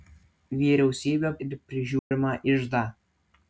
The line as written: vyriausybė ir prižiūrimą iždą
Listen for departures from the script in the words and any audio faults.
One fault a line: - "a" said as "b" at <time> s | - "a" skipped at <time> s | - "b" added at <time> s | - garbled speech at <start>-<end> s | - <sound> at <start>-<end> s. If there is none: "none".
- dropout at 2.0-2.1 s